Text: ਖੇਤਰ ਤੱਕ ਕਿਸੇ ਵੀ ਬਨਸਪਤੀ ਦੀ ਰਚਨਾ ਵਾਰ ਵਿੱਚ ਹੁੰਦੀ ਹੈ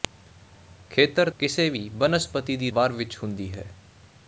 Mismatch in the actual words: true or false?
true